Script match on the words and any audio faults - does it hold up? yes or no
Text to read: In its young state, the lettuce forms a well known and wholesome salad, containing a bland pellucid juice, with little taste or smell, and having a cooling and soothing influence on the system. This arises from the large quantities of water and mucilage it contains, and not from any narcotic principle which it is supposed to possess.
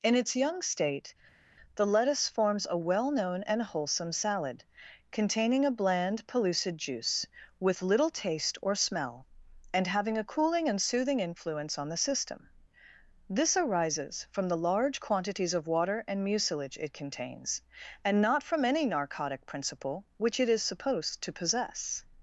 yes